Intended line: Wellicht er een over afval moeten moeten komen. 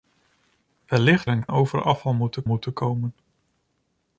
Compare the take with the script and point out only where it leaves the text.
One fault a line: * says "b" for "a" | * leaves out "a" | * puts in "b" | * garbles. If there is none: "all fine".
all fine